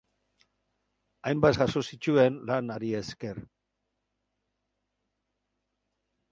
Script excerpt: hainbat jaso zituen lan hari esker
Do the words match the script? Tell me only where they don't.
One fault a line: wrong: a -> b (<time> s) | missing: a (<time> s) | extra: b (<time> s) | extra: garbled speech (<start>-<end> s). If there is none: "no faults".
no faults